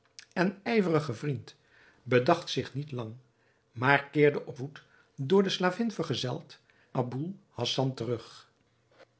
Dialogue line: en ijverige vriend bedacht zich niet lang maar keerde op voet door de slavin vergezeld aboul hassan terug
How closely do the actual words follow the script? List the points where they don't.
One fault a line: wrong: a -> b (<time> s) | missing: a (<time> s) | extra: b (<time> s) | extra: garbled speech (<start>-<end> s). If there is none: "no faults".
no faults